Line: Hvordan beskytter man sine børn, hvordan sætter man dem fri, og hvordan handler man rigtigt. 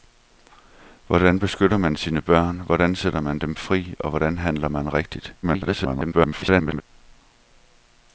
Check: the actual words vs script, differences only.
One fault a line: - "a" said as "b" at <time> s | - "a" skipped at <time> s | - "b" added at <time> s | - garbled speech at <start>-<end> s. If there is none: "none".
- garbled speech at 5.4-6.8 s